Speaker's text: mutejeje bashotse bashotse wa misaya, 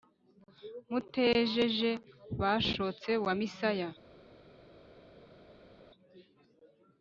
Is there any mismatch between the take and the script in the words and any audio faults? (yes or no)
yes